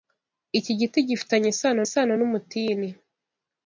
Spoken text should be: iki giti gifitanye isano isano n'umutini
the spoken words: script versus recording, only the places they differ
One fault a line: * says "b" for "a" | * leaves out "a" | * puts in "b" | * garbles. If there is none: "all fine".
all fine